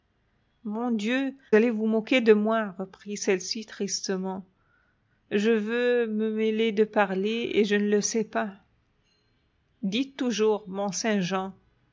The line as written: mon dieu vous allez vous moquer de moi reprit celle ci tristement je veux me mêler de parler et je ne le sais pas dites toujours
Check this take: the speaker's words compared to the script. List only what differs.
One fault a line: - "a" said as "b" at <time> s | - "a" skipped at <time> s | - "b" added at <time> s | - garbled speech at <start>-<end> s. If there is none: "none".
- "vous" skipped at 1.4 s